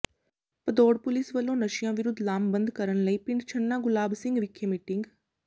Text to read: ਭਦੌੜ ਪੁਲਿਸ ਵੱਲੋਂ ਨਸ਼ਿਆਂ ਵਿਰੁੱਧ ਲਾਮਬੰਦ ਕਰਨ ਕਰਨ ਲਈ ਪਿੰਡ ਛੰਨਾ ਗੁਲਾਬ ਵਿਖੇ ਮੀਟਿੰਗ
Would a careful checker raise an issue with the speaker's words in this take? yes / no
yes